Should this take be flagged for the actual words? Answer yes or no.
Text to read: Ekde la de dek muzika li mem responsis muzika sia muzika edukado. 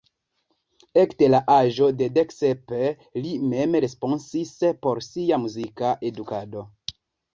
yes